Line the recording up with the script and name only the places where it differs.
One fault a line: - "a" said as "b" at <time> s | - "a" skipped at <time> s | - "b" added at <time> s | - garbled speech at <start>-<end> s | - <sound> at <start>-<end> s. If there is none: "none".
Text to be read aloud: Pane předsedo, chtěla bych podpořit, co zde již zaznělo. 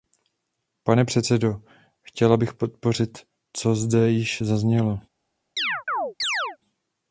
- chirp at 5.6-6.6 s